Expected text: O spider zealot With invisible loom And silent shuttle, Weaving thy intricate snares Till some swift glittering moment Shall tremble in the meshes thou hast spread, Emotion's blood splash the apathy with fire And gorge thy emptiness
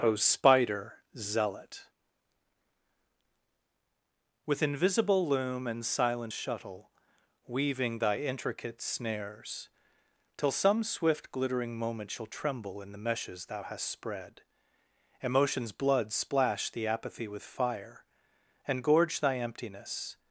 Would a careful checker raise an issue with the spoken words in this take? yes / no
no